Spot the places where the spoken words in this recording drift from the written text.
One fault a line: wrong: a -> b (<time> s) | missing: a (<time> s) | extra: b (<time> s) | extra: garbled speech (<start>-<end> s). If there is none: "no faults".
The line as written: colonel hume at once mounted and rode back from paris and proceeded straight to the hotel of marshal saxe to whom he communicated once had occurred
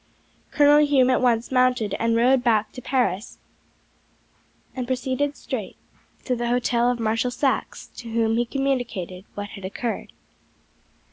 wrong: from -> to (2.7 s)
wrong: once -> what (9.3 s)